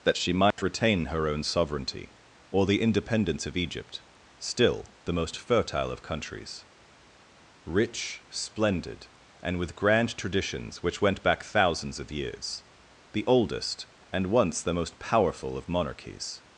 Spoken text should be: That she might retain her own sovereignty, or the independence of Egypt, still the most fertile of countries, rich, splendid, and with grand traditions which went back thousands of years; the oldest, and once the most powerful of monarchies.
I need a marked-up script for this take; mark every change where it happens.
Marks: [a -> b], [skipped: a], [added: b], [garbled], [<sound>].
That she might [dropout] retain her own sovereignty, or the independence of Egypt, still the most fertile of countries, rich, splendid, and with grand traditions which went back thousands of years; the oldest, and once the most powerful of monarchies.